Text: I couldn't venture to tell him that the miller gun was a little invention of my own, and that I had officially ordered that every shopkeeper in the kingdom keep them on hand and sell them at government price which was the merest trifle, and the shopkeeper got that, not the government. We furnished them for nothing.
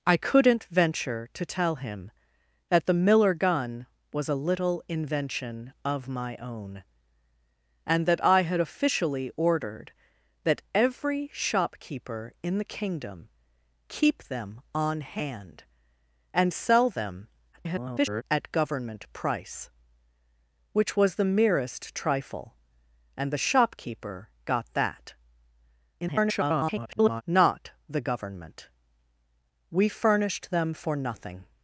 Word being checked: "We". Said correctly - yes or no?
yes